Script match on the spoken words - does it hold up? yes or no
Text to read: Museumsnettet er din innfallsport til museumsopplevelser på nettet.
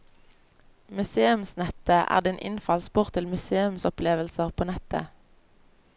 yes